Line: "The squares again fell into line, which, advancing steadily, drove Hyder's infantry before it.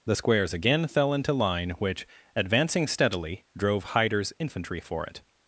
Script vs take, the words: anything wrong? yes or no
yes